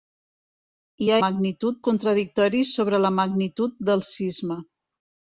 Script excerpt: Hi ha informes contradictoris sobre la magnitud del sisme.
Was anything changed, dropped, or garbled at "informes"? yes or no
yes